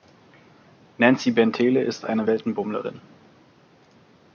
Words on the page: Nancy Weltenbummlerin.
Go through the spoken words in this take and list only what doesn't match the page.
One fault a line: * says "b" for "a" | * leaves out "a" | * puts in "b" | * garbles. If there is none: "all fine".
* puts in "Bentele ist eine"